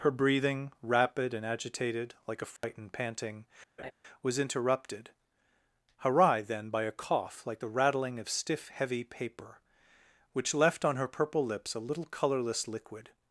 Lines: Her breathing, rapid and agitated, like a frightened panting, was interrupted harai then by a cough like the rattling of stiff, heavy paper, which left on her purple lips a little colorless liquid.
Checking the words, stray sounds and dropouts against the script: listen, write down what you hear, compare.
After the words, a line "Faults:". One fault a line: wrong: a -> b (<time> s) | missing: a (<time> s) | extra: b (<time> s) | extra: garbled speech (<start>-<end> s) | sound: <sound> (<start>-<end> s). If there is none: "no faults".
Her breathing, rapid and agitated, like a frightened panting, was interrupted harai then by a cough like the rattling of stiff, heavy paper, which left on her purple lips a little colorless liquid.
Faults:
sound: dropout (2.6-2.6 s)
sound: laugh (3.8-3.9 s)